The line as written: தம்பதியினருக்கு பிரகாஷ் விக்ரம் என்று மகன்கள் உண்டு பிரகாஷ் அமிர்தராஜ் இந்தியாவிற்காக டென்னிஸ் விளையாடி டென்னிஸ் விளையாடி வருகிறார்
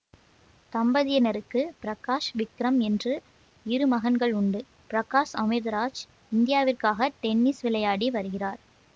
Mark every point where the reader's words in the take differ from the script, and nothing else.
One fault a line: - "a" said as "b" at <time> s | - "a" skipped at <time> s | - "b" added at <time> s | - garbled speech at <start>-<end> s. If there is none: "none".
- "இரு" added at 3.6 s
- "டென்னிஸ் விளையாடி" skipped at 8.1 s